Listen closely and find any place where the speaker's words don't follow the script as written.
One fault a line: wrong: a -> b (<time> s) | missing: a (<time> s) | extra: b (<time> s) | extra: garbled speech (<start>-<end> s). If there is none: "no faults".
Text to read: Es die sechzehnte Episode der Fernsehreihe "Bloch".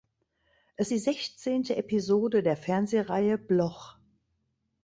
no faults